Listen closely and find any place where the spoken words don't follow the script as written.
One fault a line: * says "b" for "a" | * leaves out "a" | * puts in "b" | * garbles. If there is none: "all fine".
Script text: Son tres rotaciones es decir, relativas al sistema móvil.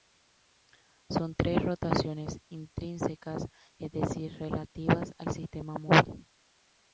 * puts in "intrínsecas"